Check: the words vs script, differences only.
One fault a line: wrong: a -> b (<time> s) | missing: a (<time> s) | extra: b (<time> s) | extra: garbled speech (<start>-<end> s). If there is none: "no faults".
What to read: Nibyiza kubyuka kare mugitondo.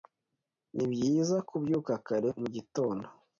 no faults